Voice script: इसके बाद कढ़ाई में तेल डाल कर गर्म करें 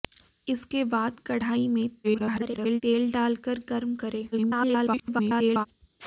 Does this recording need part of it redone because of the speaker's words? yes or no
yes